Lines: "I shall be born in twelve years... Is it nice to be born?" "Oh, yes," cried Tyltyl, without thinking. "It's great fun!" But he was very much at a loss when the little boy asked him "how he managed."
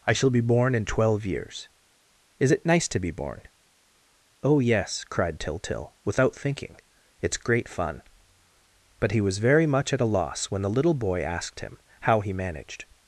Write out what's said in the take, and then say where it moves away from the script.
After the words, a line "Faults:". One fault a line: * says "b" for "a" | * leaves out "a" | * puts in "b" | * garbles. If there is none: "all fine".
"I shall be born in twelve years... Is it nice to be born?" "Oh, yes," cried Tyltyl, without thinking. "It's great fun!" But he was very much at a loss when the little boy asked him "how he managed."
Faults:
all fine